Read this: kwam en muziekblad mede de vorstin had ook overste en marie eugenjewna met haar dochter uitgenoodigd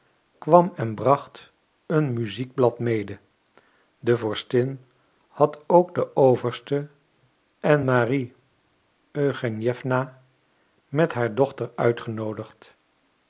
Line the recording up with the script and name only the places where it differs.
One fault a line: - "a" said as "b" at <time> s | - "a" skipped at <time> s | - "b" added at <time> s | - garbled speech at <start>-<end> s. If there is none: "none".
- "bracht een" added at 0.9 s
- "den" added at 5.9 s